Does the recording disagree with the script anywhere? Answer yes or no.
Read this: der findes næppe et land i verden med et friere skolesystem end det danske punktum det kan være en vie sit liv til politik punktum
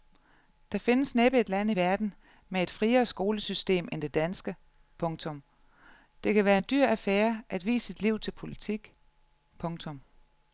yes